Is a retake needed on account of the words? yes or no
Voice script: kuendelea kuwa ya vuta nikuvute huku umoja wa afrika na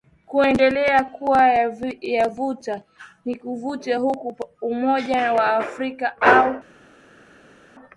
yes